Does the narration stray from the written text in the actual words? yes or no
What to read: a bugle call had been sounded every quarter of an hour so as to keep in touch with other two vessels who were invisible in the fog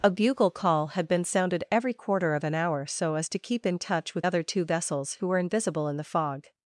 no